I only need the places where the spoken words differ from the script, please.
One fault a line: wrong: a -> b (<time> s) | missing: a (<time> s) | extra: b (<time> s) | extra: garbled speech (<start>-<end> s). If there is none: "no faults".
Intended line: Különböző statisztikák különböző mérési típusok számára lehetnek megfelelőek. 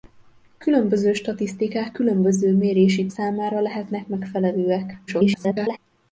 missing: típusok (3.1 s)
extra: garbled speech (5.1-5.8 s)